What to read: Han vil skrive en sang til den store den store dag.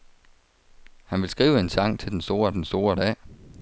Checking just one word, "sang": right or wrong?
right